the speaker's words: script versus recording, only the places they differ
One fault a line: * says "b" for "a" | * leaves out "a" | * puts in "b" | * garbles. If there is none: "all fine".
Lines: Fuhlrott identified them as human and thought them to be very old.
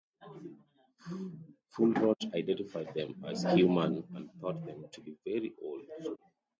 all fine